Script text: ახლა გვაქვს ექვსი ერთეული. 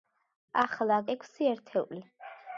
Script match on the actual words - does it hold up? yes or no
no